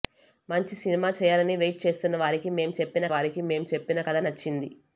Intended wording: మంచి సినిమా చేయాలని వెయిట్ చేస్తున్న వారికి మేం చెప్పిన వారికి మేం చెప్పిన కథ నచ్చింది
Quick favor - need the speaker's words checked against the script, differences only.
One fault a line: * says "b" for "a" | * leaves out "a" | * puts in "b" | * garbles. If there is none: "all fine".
all fine